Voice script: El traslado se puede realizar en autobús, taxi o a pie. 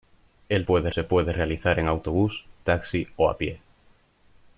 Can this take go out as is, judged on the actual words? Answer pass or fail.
fail